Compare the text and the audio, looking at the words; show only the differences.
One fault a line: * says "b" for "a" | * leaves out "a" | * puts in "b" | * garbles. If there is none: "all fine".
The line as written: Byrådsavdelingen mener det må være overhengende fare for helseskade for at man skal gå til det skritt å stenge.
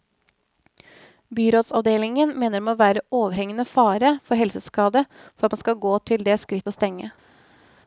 all fine